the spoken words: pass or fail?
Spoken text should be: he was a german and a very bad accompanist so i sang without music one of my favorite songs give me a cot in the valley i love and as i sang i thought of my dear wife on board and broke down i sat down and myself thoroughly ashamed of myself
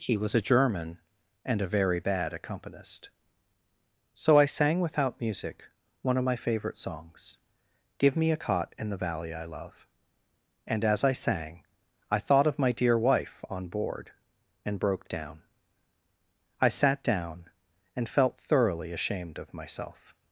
fail